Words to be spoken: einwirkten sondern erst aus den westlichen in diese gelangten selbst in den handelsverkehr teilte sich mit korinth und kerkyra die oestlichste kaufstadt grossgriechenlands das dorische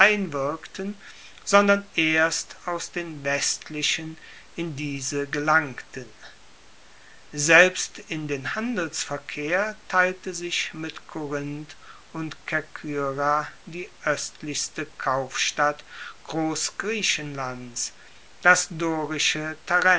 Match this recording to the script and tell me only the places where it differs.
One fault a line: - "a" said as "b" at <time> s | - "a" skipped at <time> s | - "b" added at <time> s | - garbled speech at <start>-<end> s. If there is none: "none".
none